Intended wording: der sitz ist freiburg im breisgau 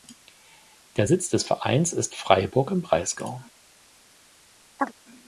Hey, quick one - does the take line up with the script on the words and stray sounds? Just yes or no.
no